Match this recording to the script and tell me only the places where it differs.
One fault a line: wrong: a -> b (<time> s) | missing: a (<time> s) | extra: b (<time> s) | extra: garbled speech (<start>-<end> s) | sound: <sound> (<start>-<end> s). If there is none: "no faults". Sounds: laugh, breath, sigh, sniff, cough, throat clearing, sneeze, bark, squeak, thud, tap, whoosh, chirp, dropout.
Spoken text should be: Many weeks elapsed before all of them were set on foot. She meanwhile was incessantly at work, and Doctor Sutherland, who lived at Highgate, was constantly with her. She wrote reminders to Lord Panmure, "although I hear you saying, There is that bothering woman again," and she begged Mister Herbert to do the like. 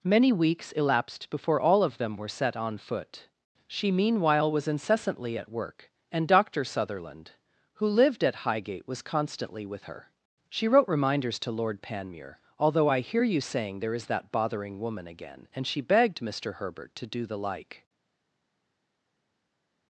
no faults